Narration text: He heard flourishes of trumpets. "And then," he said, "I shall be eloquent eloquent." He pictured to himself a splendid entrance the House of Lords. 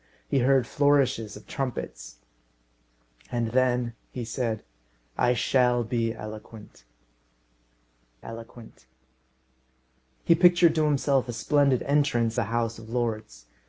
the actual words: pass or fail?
pass